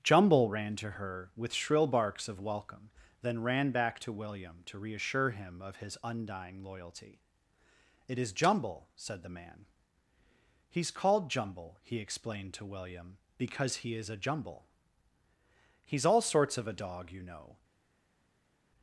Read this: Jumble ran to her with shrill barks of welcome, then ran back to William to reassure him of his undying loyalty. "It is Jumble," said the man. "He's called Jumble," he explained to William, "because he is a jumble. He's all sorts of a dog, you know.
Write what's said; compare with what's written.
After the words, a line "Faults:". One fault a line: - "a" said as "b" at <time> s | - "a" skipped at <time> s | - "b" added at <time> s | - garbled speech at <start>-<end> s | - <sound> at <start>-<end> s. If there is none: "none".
Jumble ran to her with shrill barks of welcome, then ran back to William to reassure him of his undying loyalty. "It is Jumble," said the man. "He's called Jumble," he explained to William, "because he is a jumble. He's all sorts of a dog, you know.
Faults:
none